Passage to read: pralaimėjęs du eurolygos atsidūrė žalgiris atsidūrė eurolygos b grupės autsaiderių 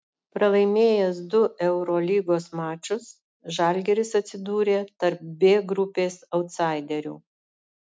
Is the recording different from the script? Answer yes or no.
yes